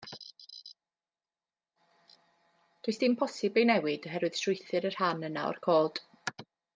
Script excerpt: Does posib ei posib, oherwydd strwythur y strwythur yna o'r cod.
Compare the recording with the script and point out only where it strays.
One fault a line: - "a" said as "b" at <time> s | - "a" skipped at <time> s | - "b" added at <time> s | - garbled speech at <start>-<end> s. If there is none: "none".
- "dim" added at 3.0 s
- "posib" said as "newid" at 3.7 s
- "strwythur" said as "rhan" at 5.0 s